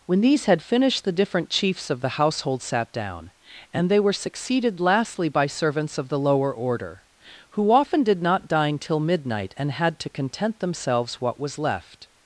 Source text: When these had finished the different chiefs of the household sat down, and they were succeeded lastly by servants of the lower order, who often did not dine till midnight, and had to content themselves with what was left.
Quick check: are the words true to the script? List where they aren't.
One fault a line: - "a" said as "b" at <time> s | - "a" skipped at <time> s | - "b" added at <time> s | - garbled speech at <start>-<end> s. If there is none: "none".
- "with" skipped at 11.2 s